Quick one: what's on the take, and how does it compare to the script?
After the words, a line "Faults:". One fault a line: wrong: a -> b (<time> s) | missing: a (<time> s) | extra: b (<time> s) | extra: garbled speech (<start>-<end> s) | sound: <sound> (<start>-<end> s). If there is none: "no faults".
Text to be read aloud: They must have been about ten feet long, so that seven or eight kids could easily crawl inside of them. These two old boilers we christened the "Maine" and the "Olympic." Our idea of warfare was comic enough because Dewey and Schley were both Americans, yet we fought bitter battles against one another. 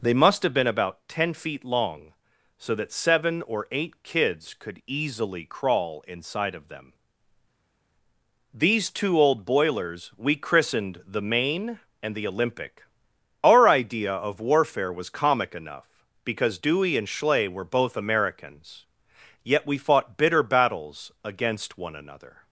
They must have been about ten feet long, so that seven or eight kids could easily crawl inside of them. These two old boilers we christened the "Maine" and the "Olympic." Our idea of warfare was comic enough because Dewey and Schley were both Americans, yet we fought bitter battles against one another.
Faults:
no faults